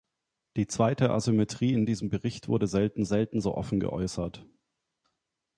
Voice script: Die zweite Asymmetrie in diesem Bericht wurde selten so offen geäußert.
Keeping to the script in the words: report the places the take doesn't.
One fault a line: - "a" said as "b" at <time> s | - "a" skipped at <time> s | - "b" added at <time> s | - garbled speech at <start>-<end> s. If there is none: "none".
- "selten" added at 3.1 s